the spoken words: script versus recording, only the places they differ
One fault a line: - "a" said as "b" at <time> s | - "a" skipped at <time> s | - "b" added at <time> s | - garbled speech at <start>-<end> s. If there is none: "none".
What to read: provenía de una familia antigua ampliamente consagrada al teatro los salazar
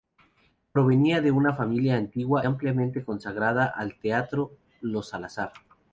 none